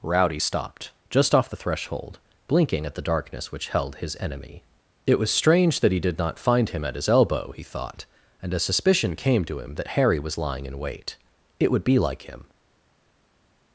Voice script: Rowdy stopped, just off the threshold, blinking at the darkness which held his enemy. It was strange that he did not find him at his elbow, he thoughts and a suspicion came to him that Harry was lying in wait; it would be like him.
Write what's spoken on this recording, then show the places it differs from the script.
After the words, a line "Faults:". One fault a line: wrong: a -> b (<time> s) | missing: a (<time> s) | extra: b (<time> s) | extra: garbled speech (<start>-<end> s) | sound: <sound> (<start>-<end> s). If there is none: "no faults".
Rowdy stopped, just off the threshold, blinking at the darkness which held his enemy. It was strange that he did not find him at his elbow, he thought and a suspicion came to him that Harry was lying in wait; it would be like him.
Faults:
wrong: thoughts -> thought (7.6 s)